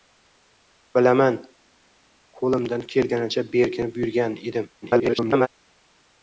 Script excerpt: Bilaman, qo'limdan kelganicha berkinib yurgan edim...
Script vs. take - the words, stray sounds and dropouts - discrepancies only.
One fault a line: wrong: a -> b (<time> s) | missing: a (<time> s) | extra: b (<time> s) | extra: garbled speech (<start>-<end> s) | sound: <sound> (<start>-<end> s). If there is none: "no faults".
extra: garbled speech (4.8-5.5 s)